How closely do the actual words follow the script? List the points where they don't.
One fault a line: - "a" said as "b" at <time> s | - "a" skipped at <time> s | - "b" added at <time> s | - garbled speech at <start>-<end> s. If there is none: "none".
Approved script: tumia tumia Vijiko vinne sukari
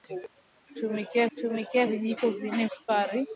none